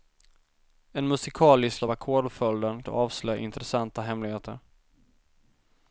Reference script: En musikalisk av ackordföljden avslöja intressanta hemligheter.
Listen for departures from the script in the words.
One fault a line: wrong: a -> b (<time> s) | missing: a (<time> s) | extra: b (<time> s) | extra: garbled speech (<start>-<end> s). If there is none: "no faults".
no faults